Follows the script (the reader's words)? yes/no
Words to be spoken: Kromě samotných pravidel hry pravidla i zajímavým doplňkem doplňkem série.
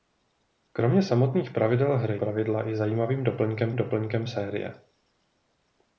yes